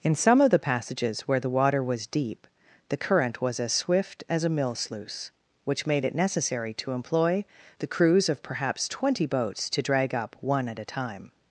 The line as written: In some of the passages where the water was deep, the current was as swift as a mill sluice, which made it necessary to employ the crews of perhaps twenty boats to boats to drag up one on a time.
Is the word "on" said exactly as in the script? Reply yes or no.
no